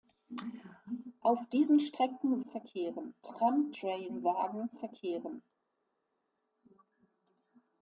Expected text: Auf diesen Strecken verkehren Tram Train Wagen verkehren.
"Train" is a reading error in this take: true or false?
false